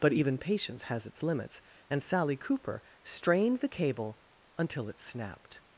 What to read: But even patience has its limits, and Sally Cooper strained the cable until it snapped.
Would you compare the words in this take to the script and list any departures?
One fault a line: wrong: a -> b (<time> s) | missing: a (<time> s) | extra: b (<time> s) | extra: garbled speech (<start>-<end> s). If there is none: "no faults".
no faults